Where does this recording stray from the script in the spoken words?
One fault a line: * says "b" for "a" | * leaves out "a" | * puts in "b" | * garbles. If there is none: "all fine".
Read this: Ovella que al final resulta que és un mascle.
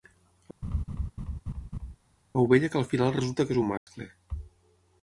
all fine